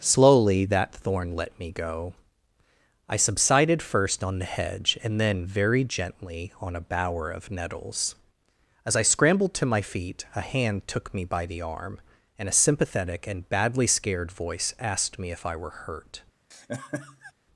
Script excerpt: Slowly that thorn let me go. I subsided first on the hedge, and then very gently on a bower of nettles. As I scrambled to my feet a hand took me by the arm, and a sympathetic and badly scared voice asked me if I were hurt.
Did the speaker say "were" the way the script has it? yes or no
yes